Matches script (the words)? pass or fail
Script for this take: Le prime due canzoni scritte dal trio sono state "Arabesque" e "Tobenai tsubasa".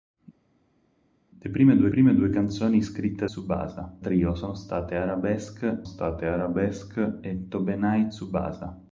fail